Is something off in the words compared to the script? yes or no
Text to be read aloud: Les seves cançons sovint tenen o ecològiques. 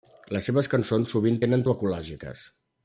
no